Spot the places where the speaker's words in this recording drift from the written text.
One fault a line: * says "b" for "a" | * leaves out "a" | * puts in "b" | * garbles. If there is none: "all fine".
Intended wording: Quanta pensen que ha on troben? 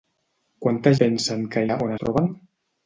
all fine